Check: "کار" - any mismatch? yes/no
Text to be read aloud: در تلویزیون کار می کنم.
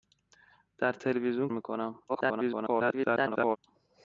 yes